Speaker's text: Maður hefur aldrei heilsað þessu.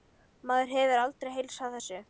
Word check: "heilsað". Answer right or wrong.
right